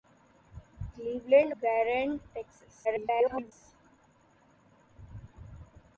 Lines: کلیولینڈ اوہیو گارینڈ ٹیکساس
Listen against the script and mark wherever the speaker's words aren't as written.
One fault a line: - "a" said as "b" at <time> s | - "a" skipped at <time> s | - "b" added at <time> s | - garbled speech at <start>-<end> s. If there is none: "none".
- "اوہیو" skipped at 1.5 s
- garbled speech at 2.8-3.5 s